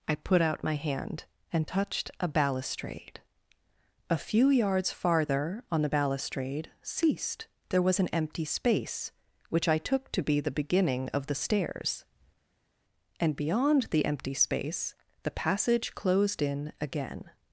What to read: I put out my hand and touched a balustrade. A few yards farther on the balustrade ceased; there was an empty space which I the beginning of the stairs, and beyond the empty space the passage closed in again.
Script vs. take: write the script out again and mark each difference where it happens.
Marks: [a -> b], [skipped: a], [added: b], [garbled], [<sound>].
I put out my hand and touched a balustrade. A few yards farther on the balustrade ceased; there was an empty space which I [added: took to be] the beginning of the stairs, and beyond the empty space the passage closed in again.